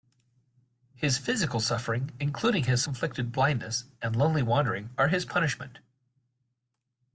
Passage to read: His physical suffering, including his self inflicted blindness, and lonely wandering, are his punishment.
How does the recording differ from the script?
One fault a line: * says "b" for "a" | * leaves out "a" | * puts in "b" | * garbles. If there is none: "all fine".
* leaves out "self"